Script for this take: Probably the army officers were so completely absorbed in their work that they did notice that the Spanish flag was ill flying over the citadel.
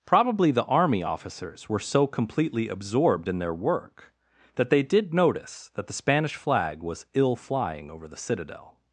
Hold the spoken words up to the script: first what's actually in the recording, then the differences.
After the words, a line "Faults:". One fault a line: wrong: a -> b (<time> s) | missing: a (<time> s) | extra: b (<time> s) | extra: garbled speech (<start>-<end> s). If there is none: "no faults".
Probably the army officers were so completely absorbed in their work that they did notice that the Spanish flag was ill flying over the citadel.
Faults:
no faults